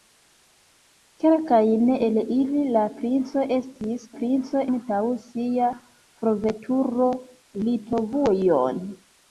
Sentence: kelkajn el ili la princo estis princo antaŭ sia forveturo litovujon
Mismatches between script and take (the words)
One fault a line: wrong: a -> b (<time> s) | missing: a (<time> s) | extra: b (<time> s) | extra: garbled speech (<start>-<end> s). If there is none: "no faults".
no faults